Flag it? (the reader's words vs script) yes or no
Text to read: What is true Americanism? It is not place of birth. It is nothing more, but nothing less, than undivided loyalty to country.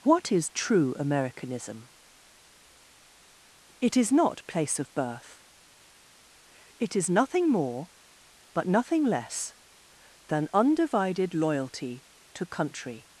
no